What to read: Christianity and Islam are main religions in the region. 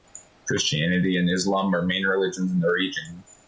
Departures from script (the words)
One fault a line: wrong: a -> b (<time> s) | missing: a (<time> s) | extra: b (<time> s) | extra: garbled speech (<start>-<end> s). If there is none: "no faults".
no faults